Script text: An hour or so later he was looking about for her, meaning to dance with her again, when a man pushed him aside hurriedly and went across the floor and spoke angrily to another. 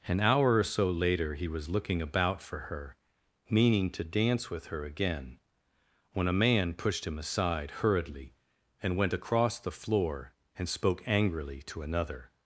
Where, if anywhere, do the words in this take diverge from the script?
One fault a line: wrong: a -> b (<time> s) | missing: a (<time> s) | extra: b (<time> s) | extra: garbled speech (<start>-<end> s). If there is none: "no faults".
no faults